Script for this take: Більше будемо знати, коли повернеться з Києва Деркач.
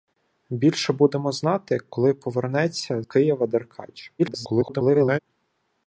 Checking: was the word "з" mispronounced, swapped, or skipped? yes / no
yes